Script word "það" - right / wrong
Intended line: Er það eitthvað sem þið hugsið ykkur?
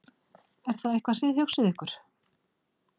right